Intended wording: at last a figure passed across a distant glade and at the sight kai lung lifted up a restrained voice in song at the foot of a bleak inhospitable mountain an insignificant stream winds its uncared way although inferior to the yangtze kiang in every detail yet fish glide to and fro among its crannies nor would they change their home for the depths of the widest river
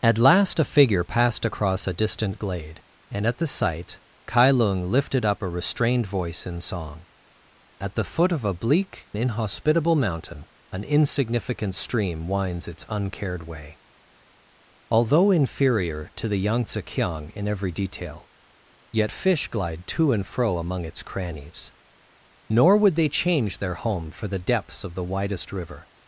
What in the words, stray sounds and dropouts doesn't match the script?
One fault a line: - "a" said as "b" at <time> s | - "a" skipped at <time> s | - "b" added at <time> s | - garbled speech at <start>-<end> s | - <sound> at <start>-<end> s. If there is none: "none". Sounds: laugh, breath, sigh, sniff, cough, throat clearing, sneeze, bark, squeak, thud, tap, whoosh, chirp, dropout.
none